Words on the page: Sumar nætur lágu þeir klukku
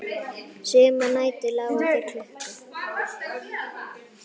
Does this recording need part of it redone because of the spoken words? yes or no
no